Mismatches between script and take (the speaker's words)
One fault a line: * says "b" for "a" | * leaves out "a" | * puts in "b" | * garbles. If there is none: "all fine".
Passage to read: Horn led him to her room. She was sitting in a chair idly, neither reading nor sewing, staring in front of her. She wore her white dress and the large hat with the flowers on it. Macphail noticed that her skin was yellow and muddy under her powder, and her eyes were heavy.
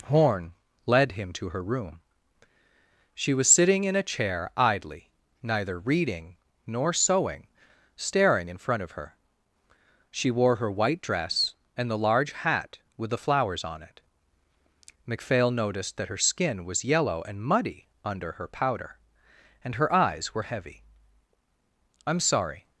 * puts in "I'm sorry"